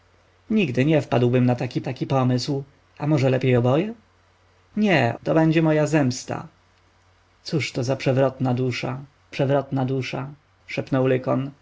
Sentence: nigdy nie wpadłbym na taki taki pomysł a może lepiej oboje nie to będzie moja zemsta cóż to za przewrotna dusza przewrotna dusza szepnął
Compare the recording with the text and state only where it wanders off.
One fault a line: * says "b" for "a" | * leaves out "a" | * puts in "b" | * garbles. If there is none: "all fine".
all fine